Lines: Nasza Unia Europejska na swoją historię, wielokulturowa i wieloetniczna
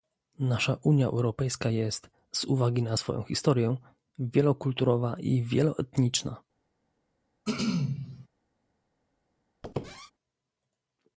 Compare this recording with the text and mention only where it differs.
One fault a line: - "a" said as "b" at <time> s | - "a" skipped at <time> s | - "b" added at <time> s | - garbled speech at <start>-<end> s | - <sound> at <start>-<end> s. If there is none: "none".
- "jest z uwagi" added at 1.7 s
- throat clearing at 7.5-8.3 s
- squeak at 9.6-10.1 s